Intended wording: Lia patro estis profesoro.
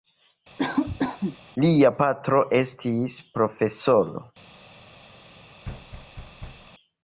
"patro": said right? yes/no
yes